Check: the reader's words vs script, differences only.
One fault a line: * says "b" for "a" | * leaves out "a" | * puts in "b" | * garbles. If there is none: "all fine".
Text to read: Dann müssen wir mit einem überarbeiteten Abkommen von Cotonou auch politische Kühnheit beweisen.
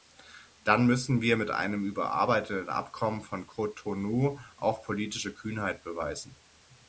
all fine